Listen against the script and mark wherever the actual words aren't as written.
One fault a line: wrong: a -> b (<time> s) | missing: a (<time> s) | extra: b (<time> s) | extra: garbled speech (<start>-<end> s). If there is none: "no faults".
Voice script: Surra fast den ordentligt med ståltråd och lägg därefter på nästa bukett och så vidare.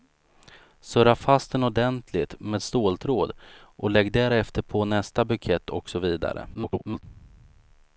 extra: garbled speech (6.5-7.0 s)